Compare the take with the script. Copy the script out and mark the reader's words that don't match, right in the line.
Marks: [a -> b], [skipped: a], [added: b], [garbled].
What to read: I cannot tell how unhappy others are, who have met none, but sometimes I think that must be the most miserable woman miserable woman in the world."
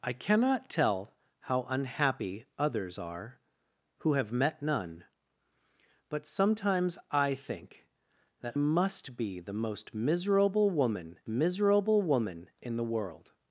I cannot tell how unhappy others are, who have met none, but sometimes I think that must be the most miserable woman miserable woman in the world."